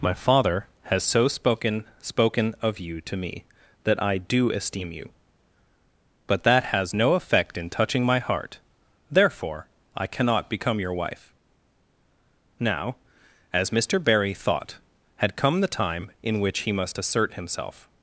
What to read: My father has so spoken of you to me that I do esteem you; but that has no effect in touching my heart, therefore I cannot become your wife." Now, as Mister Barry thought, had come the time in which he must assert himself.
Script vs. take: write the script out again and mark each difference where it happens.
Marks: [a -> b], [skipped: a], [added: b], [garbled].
My father has so spoken [added: spoken] of you to me that I do esteem you; but that has no effect in touching my heart, therefore I cannot become your wife." Now, as Mister Barry thought, had come the time in which he must assert himself.